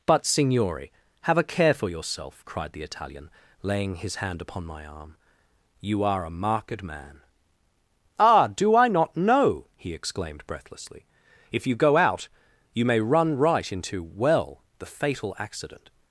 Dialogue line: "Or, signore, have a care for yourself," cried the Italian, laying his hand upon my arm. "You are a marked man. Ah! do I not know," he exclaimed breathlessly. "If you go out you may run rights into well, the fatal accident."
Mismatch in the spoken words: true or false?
true